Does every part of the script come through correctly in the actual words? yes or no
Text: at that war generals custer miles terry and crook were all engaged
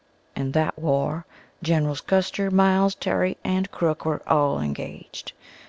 no